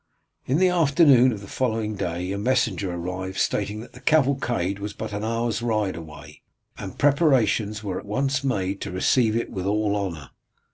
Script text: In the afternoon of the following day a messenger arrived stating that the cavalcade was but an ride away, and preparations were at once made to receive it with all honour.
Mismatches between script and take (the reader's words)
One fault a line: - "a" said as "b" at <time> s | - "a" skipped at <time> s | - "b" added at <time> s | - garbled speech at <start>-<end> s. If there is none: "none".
- "hour's" added at 5.3 s